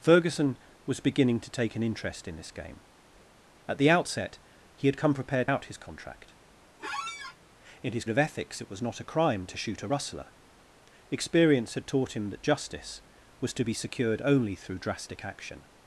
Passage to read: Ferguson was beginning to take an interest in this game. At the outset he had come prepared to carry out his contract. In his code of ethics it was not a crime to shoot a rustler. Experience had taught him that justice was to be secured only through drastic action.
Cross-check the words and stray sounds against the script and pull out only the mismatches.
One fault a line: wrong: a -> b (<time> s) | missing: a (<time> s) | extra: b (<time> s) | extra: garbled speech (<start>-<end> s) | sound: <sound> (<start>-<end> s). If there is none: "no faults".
missing: to carry (5.5 s)
sound: squeak (6.8-7.4 s)
missing: code (8.0 s)